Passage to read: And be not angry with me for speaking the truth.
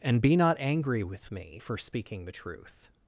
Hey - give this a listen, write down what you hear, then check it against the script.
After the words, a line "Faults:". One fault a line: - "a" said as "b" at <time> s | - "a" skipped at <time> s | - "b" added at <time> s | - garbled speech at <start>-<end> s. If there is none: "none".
And be not angry with me for speaking the truth.
Faults:
none